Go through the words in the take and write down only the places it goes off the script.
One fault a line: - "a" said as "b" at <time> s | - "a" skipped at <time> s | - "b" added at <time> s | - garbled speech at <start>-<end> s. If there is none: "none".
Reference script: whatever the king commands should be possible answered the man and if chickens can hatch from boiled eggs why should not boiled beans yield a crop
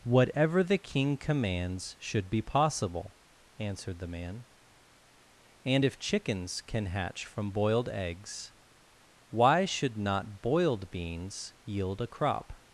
none